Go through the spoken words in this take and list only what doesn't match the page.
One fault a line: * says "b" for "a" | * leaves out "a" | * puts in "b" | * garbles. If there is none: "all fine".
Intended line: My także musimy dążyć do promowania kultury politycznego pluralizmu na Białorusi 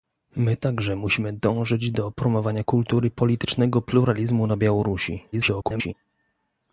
* garbles